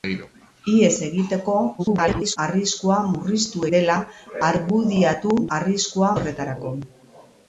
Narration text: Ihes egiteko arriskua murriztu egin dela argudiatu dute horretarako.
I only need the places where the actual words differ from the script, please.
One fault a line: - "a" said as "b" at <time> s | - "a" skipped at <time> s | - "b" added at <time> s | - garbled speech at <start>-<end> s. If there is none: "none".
- garbled speech at 1.8-2.4 s
- "egin" skipped at 3.6 s
- "dute" said as "arriskua" at 5.6 s